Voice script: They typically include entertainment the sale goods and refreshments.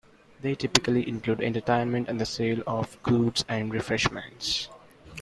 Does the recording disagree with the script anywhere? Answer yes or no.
yes